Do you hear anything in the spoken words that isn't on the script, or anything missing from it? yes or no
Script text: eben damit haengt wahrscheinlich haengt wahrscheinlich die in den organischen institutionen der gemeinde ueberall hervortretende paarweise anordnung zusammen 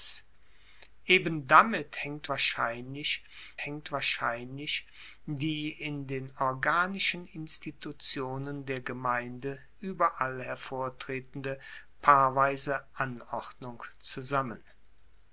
no